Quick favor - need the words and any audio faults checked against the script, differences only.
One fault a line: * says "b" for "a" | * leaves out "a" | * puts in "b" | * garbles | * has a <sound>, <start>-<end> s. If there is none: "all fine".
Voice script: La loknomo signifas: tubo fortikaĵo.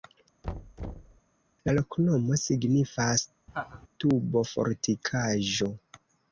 * has a thud, 0.4-1.2 s
* has a laugh, 3.5-3.9 s